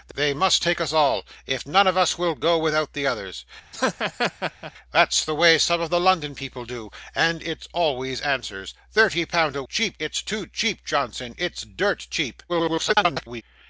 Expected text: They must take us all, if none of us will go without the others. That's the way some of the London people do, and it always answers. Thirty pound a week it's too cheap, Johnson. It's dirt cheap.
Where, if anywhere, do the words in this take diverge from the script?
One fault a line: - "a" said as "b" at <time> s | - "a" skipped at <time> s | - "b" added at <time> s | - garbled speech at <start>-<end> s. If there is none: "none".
- "week" said as "cheap" at 9.6 s
- garbled speech at 12.5-13.4 s